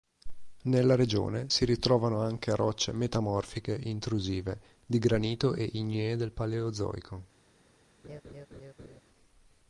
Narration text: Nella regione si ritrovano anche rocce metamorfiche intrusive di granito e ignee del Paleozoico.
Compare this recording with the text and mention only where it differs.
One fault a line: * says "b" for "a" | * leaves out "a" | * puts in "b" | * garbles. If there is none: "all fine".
all fine